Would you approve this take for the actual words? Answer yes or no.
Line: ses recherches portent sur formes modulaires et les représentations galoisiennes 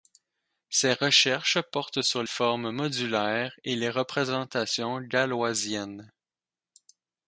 yes